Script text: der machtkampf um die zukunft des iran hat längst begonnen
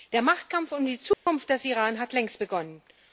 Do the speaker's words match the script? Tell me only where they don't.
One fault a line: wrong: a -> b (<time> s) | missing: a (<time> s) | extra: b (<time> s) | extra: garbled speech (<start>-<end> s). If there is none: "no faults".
no faults